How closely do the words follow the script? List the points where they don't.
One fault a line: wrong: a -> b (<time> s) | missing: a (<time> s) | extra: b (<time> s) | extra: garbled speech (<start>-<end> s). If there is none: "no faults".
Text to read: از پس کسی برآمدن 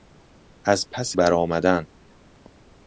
missing: کسی (1.2 s)